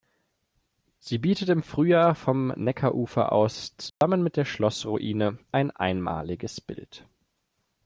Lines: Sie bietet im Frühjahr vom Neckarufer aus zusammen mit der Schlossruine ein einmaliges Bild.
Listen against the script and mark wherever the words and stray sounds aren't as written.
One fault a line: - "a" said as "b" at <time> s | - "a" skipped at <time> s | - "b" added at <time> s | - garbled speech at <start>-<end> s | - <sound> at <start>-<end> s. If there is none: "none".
- dropout at 3.9-4.0 s